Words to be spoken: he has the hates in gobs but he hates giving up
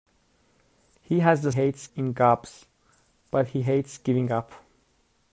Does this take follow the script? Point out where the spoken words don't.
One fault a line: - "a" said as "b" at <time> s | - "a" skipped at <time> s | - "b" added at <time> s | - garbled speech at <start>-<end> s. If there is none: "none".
none